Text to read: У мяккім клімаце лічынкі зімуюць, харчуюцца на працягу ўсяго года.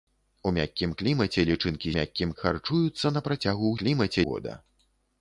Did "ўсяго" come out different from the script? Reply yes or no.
yes